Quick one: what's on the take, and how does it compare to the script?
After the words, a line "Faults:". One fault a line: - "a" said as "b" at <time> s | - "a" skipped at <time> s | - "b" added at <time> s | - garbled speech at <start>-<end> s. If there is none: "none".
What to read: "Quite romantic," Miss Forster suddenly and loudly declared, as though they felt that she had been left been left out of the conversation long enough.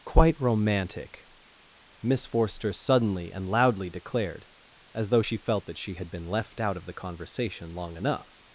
"Quite romantic," Miss Forster suddenly and loudly declared, as though she felt that she had been left out of the conversation long enough.
Faults:
- "they" said as "she" at 5.2 s
- "been left" skipped at 6.6 s